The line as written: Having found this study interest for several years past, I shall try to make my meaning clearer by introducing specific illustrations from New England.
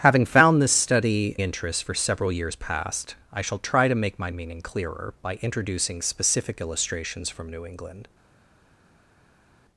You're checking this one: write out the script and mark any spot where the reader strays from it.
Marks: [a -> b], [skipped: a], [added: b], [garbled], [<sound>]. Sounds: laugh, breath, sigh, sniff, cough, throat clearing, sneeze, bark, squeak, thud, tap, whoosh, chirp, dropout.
Having found this study interest for several years past, I shall try to make my meaning clearer by introducing specific illustrations from New England.